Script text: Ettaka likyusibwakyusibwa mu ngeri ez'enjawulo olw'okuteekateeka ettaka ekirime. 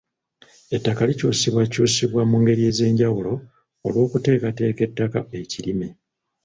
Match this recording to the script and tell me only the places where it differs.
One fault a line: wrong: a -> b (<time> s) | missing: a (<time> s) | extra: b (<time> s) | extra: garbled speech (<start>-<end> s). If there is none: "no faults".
no faults